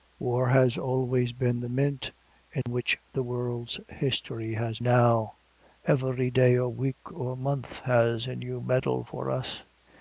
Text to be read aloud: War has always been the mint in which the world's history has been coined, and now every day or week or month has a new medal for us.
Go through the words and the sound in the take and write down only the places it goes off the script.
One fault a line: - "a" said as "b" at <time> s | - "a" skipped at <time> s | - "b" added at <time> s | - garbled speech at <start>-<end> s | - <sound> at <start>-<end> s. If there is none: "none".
- dropout at 2.6-2.7 s
- "been coined and" skipped at 4.8 s